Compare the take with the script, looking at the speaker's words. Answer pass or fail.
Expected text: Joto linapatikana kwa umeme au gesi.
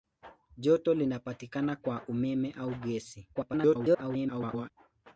fail